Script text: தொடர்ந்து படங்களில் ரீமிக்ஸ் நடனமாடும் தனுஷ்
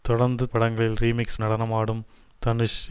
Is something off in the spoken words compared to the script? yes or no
no